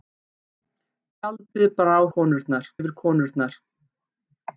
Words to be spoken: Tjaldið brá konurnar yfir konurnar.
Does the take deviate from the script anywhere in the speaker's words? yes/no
no